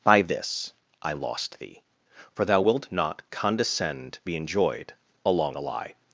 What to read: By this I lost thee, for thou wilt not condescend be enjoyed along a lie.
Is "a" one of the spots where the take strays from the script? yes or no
no